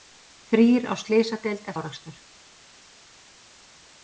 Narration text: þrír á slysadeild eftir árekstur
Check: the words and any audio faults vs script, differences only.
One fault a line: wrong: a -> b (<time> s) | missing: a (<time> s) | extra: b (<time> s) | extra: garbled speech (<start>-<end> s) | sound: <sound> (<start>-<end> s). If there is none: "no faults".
missing: eftir (1.7 s)